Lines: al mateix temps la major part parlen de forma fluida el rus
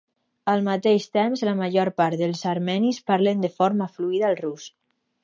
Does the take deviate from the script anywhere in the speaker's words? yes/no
yes